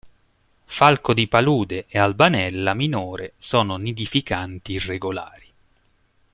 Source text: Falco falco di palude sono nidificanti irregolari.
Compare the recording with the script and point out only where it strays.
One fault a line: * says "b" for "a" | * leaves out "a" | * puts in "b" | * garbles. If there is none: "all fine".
* leaves out "falco"
* puts in "e Albanella minore"